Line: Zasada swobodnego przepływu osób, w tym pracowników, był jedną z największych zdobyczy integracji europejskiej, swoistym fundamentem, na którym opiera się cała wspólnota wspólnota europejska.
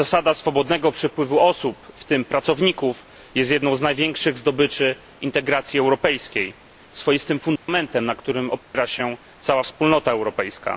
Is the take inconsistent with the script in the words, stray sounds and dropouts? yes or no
yes